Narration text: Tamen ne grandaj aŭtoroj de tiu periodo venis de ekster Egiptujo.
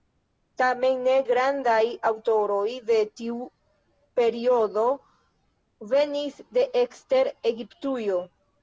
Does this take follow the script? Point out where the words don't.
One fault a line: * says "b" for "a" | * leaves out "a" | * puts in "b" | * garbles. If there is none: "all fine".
all fine